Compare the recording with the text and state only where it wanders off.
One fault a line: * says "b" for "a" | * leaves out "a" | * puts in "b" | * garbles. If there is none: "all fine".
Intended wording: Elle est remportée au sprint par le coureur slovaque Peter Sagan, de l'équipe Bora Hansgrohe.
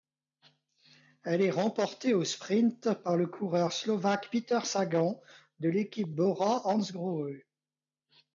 all fine